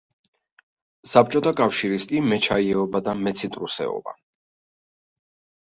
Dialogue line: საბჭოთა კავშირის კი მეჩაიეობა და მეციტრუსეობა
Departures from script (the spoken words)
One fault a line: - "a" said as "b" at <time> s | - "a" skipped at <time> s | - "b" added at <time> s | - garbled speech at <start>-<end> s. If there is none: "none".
none